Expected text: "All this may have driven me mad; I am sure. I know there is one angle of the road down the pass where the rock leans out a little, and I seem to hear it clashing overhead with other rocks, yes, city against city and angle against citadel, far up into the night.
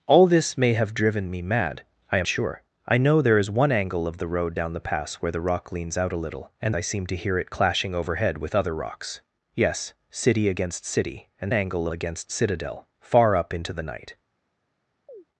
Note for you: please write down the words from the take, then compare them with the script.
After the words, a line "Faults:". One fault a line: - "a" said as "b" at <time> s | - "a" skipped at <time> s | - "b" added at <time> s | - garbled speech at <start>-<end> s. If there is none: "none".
"All this may have driven me mad; I am sure. I know there is one angle of the road down the pass where the rock leans out a little, and I seem to hear it clashing overhead with other rocks, yes, city against city and angle against citadel, far up into the night.
Faults:
none